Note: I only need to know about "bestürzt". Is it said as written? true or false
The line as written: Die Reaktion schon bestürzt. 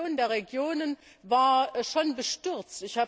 true